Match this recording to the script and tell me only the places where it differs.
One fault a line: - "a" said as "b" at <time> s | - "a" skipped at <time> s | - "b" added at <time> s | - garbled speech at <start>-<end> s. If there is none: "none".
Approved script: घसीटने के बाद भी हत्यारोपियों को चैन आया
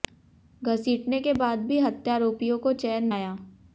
none